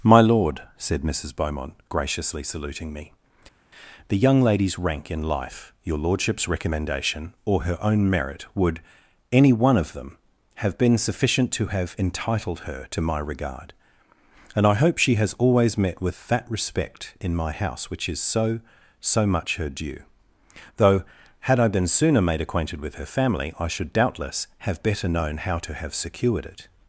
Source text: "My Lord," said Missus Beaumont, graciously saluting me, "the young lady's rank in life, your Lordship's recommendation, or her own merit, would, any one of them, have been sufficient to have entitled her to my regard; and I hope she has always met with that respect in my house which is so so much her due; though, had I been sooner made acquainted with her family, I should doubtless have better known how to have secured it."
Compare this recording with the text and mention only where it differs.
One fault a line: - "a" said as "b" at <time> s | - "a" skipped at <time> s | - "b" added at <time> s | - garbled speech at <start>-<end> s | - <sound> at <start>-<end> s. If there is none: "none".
none